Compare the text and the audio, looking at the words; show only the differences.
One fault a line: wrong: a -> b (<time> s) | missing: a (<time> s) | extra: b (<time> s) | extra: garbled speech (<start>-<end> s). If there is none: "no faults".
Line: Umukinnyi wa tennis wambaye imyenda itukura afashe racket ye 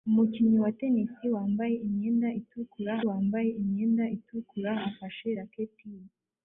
extra: wambaye imyenda itukura (3.1 s)